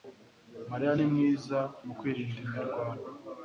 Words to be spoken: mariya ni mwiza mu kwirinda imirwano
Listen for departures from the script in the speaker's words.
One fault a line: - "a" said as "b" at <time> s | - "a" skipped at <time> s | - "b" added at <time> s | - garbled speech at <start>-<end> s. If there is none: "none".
none